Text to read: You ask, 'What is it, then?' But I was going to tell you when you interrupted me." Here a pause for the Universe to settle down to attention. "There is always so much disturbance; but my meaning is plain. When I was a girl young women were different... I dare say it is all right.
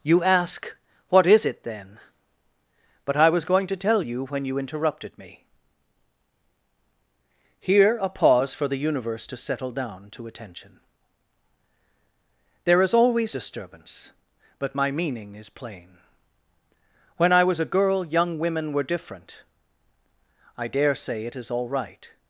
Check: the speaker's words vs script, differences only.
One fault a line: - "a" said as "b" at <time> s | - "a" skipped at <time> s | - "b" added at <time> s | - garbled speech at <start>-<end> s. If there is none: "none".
- "so much" skipped at 13.3 s